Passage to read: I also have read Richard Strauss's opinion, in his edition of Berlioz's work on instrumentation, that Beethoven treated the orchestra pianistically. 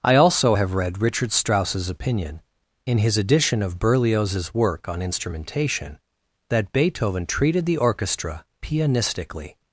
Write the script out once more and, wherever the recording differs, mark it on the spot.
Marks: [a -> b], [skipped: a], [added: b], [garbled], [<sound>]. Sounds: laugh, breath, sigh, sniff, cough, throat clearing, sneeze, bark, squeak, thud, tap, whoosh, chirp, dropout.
I also have read Richard Strauss's opinion, in his edition of Berlioz's work on instrumentation, that Beethoven treated the orchestra pianistically.